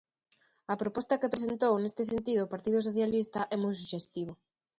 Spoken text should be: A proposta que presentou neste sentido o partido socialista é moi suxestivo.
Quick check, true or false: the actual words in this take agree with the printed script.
true